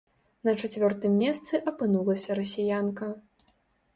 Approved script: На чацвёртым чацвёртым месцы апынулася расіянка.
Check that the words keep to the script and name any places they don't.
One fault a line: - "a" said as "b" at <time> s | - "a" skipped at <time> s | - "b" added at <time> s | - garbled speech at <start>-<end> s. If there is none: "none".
- "чацвёртым" skipped at 1.2 s